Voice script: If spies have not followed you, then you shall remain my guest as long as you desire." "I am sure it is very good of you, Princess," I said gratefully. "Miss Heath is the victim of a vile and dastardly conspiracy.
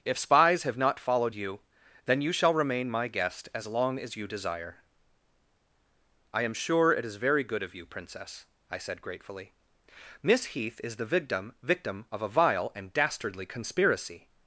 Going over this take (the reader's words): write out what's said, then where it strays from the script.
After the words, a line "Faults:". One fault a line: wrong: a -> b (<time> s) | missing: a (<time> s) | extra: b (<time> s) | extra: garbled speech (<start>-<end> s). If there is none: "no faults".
If spies have not followed you, then you shall remain my guest as long as you desire." "I am sure it is very good of you, Princess," I said gratefully. "Miss Heath is the victim victim of a vile and dastardly conspiracy.
Faults:
extra: victim (11.6 s)